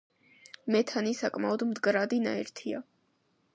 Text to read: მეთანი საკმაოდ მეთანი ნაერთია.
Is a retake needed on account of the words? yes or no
yes